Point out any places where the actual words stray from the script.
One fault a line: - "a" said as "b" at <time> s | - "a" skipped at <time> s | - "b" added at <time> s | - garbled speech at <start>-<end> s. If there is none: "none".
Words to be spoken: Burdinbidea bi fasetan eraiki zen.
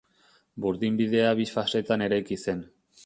none